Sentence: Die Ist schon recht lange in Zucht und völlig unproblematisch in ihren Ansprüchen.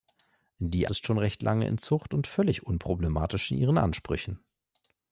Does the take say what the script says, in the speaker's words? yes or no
yes